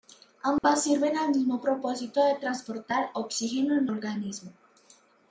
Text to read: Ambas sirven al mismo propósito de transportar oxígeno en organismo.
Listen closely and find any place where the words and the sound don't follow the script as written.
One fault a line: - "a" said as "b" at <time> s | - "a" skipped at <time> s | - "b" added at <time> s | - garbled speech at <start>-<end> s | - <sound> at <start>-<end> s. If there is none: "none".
- dropout at 0.6-0.6 s